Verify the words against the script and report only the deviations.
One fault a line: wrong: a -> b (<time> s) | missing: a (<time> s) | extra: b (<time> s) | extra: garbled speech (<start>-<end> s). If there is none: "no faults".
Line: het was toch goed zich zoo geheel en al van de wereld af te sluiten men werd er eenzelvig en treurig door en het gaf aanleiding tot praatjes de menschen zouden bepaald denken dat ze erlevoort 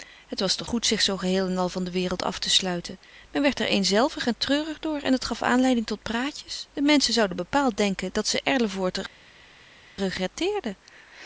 no faults